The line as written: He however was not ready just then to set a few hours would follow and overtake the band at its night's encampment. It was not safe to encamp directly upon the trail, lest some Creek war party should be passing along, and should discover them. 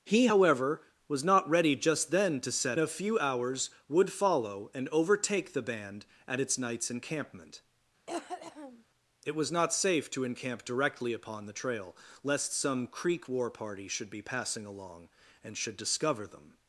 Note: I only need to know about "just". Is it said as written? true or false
true